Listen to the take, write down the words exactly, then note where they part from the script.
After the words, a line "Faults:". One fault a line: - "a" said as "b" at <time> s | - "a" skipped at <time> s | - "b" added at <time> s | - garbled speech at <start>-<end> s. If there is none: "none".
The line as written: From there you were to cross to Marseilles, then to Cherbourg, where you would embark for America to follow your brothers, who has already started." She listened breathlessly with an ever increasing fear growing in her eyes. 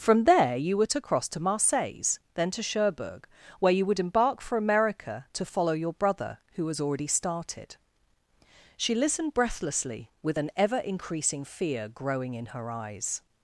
From there you were to cross to Marseilles, then to Cherbourg, where you would embark for America to follow your brother, who has already started." She listened breathlessly with an ever increasing fear growing in her eyes.
Faults:
- "brothers" said as "brother" at 5.9 s